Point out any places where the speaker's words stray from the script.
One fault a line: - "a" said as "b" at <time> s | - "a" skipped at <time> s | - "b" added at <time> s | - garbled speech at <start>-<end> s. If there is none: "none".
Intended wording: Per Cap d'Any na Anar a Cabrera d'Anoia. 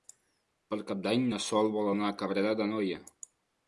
- "Sol vol" added at 1.5 s